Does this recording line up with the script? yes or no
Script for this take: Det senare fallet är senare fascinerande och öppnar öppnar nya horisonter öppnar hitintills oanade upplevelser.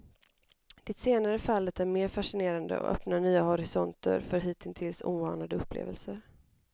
no